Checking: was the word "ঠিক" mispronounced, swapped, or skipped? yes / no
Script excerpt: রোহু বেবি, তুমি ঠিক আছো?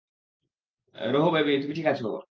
no